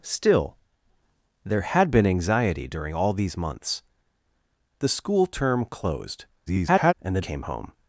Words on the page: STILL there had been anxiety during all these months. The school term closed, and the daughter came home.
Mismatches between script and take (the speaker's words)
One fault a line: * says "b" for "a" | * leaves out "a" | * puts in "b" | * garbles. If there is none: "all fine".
* garbles
* leaves out "daughter"